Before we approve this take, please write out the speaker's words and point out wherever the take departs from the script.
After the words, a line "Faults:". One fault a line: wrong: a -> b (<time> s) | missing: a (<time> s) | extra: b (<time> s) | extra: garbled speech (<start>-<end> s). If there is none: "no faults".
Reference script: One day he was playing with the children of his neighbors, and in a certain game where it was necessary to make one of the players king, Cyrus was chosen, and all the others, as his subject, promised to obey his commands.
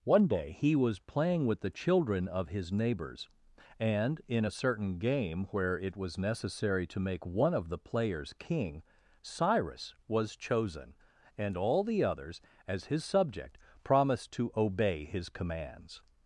One day he was playing with the children of his neighbors, and in a certain game where it was necessary to make one of the players king, Cyrus was chosen, and all the others, as his subject, promised to obey his commands.
Faults:
no faults